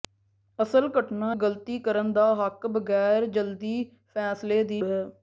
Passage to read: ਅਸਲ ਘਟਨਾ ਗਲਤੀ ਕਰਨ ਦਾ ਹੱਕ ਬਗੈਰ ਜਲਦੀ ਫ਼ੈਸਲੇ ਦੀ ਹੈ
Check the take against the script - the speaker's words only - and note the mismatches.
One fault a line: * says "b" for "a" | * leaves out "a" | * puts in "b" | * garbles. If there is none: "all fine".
all fine